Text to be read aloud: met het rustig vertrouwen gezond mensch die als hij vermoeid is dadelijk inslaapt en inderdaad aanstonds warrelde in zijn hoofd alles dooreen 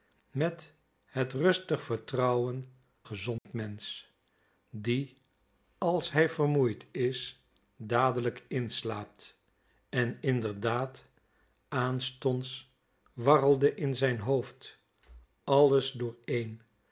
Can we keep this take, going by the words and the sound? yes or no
no